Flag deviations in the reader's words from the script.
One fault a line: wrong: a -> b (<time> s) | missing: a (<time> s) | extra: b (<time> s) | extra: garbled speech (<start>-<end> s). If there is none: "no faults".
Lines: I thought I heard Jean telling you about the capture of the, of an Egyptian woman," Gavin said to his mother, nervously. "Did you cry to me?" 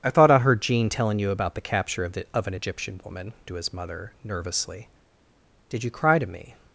missing: Gavin said (3.3 s)